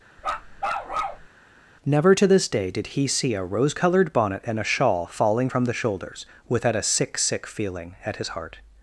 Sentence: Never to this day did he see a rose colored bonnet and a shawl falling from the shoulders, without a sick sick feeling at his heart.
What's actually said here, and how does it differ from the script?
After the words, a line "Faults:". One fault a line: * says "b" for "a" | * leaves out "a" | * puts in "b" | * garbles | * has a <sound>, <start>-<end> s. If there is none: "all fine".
Never to this day did he see a rose colored bonnet and a shawl falling from the shoulders, without a sick sick feeling at his heart.
Faults:
* has a bark, 0.2-1.3 s